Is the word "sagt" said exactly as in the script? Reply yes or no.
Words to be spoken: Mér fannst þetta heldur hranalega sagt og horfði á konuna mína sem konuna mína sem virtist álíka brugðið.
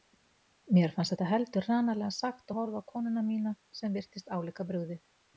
yes